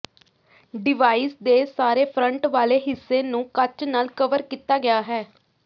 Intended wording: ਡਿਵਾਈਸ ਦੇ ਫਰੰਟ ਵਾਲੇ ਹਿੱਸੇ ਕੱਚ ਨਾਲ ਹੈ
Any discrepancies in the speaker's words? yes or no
yes